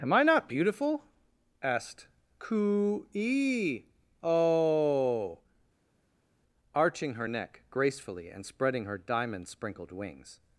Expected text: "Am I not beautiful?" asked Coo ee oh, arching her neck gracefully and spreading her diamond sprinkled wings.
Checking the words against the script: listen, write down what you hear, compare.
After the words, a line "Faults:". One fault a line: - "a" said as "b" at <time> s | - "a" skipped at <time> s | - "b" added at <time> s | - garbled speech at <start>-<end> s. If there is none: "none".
"Am I not beautiful?" asked Coo ee oh, arching her neck gracefully and spreading her diamond sprinkled wings.
Faults:
none